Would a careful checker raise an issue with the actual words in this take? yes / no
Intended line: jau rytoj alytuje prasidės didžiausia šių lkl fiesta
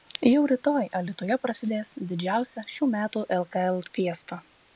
yes